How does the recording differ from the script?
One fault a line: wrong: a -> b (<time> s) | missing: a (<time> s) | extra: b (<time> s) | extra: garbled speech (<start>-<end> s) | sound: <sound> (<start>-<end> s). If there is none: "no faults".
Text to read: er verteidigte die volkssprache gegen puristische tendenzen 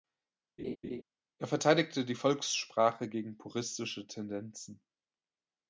sound: laugh (0.6-1.0 s)